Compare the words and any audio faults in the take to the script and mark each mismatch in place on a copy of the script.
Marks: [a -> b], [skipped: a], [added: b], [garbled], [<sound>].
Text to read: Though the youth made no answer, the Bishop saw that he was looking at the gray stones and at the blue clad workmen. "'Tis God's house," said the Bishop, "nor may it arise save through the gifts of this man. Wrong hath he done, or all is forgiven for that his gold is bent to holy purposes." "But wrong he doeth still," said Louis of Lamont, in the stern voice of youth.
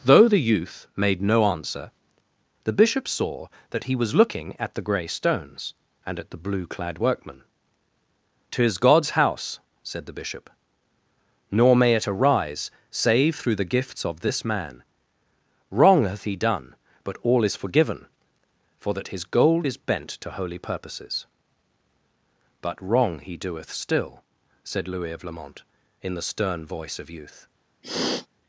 Though the youth made no answer, the Bishop saw that he was looking at the gray stones and at the blue clad workmen. "'Tis God's house," said the Bishop, "nor may it arise save through the gifts of this man. Wrong hath he done, [or -> but] all is forgiven for that his gold is bent to holy purposes." "But wrong he doeth still," said Louis of Lamont, in the stern voice of youth. [sniff]